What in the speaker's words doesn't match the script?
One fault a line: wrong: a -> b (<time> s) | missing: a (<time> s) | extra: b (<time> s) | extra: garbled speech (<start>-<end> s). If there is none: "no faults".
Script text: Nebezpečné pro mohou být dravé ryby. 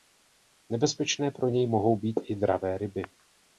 extra: něj (1.5 s)
extra: i (2.2 s)